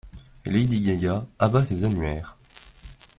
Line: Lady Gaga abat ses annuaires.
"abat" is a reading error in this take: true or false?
false